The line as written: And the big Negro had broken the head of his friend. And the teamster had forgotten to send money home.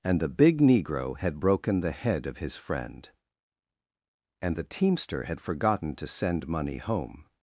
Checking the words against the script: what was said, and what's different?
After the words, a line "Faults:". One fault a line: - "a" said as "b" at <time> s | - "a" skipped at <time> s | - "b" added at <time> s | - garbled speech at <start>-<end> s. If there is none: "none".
And the big Negro had broken the head of his friend. And the teamster had forgotten to send money home.
Faults:
none